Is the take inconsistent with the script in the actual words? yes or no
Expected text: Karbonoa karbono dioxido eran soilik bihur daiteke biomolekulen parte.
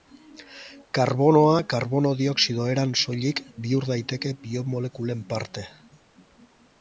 no